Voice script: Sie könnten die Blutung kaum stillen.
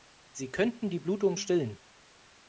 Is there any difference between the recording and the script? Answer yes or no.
yes